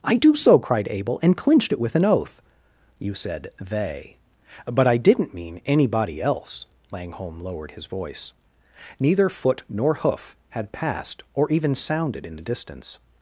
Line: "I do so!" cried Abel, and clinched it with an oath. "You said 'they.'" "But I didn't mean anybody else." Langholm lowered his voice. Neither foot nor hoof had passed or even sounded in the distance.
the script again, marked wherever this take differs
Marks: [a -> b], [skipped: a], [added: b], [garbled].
"I do so!" cried Abel, and clinched it with an oath. "You said 'they.'" "But I didn't mean anybody else." Langholm lowered his voice. Neither foot nor hoof had passed or even sounded in the distance.